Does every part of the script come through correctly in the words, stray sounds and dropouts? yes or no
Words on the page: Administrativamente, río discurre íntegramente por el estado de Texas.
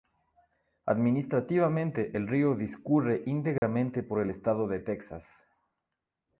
no